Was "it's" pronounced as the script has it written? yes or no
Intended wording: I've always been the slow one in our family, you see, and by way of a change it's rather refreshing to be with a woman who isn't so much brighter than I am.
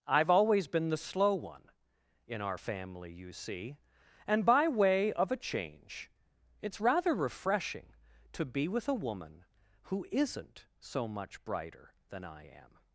yes